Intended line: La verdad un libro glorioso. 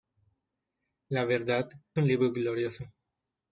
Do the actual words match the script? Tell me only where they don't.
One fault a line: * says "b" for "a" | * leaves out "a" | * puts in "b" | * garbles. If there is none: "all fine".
all fine